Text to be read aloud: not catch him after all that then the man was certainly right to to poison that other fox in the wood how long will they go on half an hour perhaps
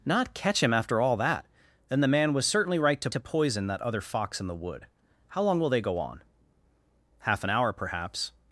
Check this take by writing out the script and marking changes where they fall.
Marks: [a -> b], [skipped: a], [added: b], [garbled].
not catch him after all that then the man was certainly right to to poison that other fox in the wood how long will they go on half an hour perhaps